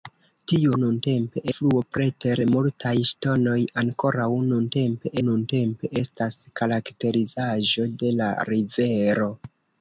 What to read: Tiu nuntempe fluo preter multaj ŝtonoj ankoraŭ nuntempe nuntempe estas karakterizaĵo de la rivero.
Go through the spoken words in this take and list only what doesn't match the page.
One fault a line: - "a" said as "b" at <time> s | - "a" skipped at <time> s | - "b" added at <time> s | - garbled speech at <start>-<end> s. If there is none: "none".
none